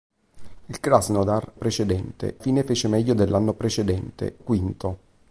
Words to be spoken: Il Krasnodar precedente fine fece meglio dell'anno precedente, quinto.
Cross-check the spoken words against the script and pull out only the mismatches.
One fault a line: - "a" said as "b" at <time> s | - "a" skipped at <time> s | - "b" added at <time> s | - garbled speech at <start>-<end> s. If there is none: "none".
none